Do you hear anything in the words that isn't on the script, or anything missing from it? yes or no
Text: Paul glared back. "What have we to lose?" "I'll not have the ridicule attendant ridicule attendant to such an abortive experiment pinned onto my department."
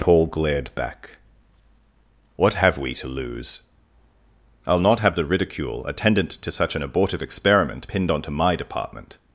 yes